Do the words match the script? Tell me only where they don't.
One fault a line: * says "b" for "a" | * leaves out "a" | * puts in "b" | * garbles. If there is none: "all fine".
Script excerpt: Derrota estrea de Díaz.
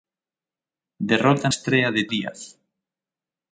all fine